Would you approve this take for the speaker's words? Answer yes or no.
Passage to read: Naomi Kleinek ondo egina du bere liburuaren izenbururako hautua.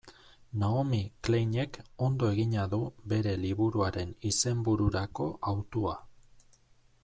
yes